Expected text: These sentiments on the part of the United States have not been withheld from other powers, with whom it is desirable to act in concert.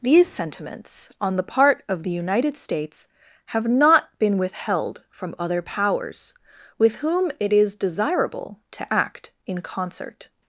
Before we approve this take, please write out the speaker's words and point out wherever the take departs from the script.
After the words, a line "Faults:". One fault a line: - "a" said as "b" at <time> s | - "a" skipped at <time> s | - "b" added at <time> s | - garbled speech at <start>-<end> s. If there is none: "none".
These sentiments on the part of the United States have not been withheld from other powers, with whom it is desirable to act in concert.
Faults:
none